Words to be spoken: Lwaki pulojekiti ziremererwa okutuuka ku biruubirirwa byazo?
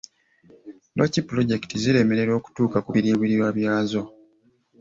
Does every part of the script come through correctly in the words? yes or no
yes